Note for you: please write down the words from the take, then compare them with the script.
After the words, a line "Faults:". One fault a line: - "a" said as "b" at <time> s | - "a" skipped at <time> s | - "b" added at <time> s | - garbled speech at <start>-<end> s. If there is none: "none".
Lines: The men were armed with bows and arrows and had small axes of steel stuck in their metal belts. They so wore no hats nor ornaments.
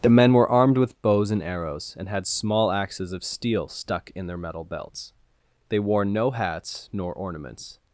The men were armed with bows and arrows and had small axes of steel stuck in their metal belts. They wore no hats nor ornaments.
Faults:
- "so" skipped at 5.8 s